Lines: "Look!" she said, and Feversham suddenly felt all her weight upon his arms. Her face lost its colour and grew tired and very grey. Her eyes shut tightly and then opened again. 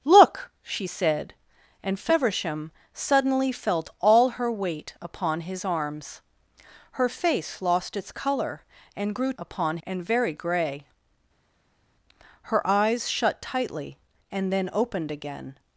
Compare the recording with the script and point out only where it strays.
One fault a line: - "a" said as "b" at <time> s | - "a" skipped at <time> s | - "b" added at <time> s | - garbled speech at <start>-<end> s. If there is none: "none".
- "tired" said as "upon" at 9.4 s